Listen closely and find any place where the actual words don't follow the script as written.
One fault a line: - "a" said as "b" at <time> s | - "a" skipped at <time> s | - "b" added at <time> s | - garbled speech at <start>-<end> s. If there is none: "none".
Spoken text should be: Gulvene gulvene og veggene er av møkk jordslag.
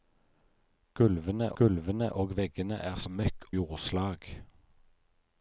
none